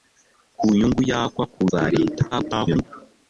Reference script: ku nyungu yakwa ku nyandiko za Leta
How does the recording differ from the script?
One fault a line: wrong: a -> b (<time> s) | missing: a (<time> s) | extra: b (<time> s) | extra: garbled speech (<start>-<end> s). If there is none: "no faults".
missing: nyandiko (1.6 s)
extra: garbled speech (2.3-2.8 s)